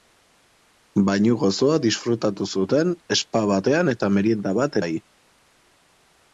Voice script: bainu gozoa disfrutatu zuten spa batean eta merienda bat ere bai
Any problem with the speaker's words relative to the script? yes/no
yes